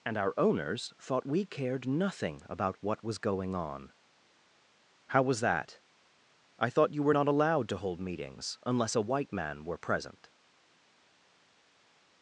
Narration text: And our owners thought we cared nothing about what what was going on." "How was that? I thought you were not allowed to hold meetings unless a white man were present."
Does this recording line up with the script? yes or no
no